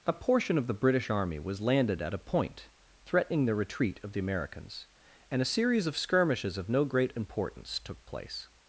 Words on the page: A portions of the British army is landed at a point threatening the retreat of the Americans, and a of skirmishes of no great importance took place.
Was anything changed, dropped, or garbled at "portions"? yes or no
yes